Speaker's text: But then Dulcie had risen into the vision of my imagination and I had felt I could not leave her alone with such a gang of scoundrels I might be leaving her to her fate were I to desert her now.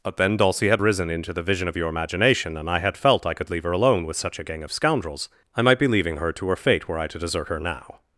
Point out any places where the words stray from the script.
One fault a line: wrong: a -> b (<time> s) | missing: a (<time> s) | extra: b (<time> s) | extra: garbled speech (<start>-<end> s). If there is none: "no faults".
wrong: my -> your (1.7 s)
missing: not (3.5 s)